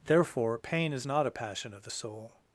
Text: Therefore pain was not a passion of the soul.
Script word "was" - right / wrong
wrong